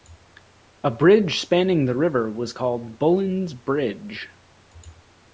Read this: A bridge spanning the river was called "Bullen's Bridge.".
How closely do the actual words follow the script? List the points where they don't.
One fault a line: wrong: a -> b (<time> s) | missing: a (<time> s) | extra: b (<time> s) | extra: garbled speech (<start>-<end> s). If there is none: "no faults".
no faults